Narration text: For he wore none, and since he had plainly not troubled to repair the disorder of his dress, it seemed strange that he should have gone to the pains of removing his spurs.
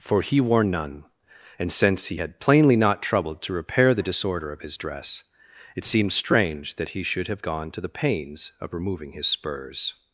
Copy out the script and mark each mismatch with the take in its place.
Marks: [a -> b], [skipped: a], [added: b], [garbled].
For he wore none, and since he had plainly not troubled to repair the disorder of his dress, it seemed strange that he should have gone to the pains of removing his spurs.